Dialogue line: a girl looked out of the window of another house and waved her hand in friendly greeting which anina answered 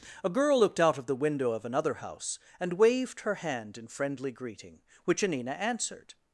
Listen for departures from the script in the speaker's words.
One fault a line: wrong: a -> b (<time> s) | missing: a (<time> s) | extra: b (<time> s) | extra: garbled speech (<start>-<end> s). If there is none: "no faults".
no faults